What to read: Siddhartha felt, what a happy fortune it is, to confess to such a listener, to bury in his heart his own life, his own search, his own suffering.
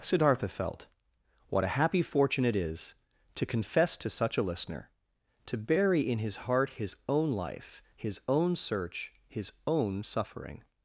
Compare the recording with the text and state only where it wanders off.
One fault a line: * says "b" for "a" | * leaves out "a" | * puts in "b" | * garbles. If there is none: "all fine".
all fine